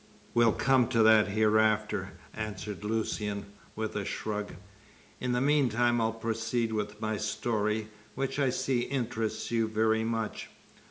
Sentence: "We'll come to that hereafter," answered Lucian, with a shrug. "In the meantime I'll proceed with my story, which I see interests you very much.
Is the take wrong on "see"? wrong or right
right